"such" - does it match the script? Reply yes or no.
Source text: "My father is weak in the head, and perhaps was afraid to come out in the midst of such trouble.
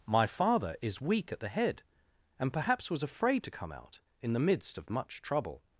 no